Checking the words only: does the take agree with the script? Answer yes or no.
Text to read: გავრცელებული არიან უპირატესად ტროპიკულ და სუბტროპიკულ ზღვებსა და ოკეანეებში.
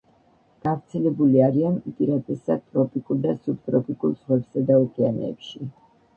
yes